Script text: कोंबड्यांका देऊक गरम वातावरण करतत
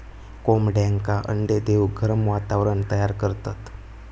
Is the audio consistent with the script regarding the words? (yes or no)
no